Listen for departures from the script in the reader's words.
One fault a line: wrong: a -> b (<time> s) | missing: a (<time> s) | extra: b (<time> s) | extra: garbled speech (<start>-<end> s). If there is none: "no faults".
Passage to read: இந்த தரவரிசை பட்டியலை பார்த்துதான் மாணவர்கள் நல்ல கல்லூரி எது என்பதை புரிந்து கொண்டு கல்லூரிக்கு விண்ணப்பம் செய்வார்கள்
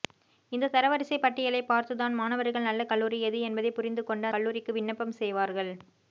no faults